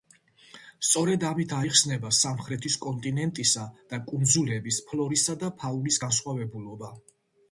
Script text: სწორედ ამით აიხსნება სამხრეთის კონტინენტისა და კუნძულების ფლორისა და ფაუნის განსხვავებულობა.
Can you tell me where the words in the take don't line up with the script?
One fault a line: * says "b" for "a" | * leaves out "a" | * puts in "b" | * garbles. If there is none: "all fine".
all fine